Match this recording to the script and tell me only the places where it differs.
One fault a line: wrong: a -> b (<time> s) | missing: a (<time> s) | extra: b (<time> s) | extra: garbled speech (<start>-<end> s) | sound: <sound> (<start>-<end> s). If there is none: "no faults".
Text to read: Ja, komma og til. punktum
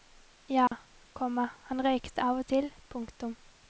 sound: dropout (0.7-0.7 s)
extra: han røykte av (1.7 s)